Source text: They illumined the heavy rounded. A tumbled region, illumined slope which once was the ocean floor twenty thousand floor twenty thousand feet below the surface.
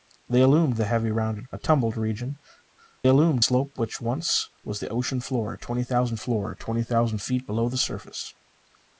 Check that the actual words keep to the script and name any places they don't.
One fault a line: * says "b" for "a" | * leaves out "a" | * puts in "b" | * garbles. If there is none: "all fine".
all fine